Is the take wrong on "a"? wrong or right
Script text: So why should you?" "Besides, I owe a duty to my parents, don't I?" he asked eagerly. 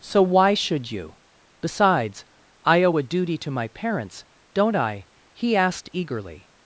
right